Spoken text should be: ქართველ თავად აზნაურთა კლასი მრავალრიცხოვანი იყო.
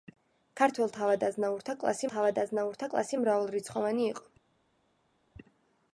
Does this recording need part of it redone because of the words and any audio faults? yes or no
yes